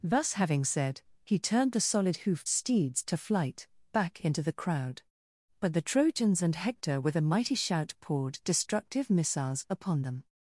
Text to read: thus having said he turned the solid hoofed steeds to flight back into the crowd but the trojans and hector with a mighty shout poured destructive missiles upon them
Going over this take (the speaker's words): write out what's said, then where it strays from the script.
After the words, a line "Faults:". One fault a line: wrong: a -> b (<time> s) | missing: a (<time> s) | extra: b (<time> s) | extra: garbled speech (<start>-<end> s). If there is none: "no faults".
thus having said he turned the solid hoofed steeds to flight back into the crowd but the trojans and hector with a mighty shout poured destructive missiles upon them
Faults:
no faults